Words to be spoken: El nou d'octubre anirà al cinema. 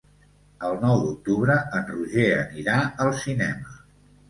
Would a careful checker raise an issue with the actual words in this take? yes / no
yes